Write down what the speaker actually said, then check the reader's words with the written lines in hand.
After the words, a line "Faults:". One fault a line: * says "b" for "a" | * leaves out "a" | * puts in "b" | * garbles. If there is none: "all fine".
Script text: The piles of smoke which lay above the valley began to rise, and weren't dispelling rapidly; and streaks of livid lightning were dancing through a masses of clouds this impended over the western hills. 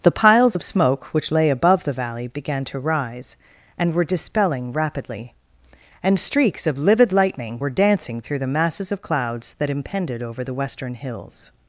The piles of smoke which lay above the valley began to rise, and were dispelling rapidly; and streaks of livid lightning were dancing through the masses of clouds that impended over the western hills.
Faults:
* says "were" for "weren't"
* says "the" for "a"
* says "that" for "this"